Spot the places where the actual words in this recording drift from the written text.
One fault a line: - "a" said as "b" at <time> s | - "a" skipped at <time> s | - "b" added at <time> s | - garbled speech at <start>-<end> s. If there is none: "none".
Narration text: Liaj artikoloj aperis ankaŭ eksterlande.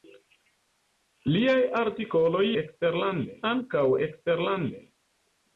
- "aperis" said as "eksterlande" at 2.6 s